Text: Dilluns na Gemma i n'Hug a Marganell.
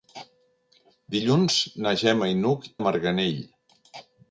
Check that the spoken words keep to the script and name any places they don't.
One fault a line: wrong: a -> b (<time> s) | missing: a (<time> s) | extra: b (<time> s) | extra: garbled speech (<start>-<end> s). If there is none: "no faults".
no faults